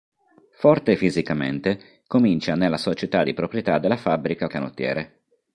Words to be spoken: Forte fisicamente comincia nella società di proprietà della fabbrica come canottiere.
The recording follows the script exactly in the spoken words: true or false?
false